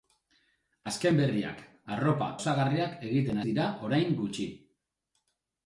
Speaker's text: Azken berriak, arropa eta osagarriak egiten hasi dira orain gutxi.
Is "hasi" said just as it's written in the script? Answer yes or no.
no